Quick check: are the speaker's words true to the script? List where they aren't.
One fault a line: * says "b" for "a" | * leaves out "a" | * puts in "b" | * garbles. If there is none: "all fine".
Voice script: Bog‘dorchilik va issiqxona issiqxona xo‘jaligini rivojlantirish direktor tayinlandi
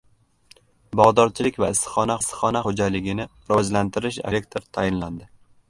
all fine